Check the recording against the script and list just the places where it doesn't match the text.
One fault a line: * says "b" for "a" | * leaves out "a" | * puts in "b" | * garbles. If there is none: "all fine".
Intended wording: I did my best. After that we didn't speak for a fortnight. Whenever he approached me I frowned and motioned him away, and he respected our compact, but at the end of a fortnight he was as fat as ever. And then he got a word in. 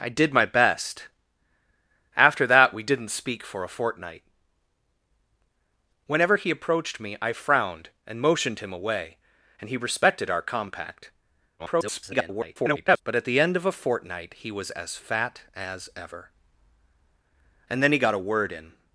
* garbles